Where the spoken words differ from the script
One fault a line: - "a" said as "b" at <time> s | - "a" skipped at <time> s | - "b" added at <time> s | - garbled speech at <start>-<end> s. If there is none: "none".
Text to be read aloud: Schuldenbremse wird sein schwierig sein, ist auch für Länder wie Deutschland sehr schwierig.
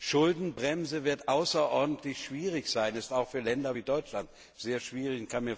- "sein" said as "außerordentlich" at 1.3 s